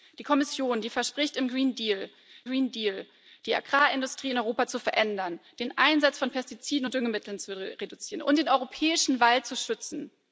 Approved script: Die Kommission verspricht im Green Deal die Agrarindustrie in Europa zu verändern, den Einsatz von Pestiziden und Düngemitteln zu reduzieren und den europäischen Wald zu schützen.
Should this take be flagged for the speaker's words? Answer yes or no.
yes